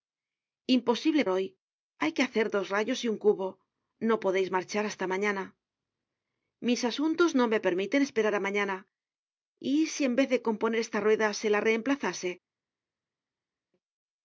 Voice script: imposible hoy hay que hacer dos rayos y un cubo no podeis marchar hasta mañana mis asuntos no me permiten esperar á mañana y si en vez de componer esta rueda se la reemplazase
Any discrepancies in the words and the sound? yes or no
no